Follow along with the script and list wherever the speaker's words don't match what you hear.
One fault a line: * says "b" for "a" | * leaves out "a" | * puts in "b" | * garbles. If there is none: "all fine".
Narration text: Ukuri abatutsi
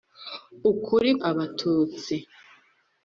all fine